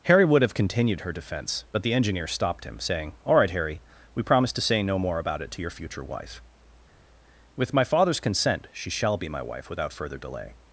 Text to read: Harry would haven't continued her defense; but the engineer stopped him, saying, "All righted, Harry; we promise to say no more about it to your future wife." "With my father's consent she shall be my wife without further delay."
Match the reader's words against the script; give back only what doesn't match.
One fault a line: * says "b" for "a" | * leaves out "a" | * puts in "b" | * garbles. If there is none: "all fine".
* says "have" for "haven't"
* says "right" for "righted"